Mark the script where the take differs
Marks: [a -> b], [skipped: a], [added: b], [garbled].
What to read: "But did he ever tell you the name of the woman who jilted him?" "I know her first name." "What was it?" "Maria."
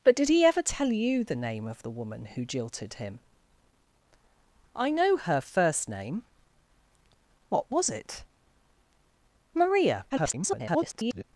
"But did he ever tell you the name of the woman who jilted him?" "I know her first name." "What was it?" "Maria." [garbled]